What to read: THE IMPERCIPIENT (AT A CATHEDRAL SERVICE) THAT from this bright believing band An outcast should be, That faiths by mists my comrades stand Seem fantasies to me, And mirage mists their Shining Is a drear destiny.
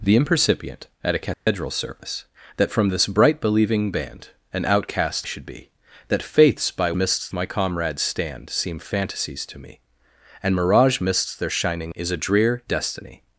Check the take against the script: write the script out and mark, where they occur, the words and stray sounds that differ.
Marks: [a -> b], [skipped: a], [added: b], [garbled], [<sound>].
THE IMPERCIPIENT (AT A CATHEDRAL [dropout] SERVICE) THAT from this bright believing band An outcast should be, That faiths by mists my comrades stand Seem fantasies to me, And mirage mists their Shining Is a drear destiny.